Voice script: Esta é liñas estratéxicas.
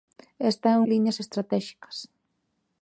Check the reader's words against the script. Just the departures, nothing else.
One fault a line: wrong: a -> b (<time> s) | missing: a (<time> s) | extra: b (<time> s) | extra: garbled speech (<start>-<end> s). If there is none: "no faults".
no faults